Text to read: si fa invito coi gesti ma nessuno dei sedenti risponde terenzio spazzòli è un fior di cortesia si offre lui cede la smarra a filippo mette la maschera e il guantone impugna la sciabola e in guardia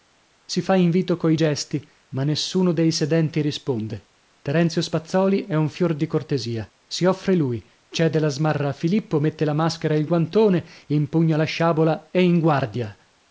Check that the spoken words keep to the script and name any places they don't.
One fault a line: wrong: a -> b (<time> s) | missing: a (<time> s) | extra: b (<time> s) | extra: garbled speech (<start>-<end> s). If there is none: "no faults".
no faults